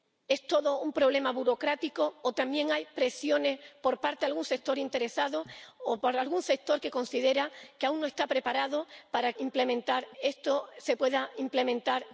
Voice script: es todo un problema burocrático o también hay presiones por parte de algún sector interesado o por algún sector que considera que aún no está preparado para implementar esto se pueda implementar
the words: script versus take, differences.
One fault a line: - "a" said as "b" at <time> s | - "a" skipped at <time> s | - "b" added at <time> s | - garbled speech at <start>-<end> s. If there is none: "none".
none